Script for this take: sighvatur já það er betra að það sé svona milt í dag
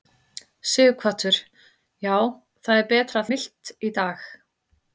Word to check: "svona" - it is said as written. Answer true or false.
false